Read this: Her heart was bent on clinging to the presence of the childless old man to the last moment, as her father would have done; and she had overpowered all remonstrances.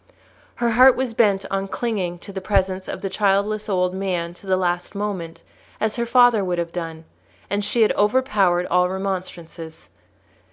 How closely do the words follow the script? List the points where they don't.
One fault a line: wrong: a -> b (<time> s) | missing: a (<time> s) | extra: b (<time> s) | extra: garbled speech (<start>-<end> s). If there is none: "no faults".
no faults